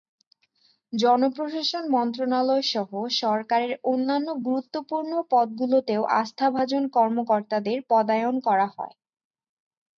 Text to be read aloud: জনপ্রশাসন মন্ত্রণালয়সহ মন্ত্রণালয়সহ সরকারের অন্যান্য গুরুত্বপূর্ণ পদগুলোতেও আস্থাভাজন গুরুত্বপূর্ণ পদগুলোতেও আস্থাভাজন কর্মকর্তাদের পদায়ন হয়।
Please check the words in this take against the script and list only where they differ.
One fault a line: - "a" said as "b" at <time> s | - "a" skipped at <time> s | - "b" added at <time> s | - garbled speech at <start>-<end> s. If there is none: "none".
- "মন্ত্রণালয়সহ" skipped at 2.9 s
- "গুরুত্বপূর্ণ পদগুলোতেও আস্থাভাজন" skipped at 6.8 s
- "করা" added at 8.5 s